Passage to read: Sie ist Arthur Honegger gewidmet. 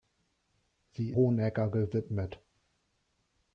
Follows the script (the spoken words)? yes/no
no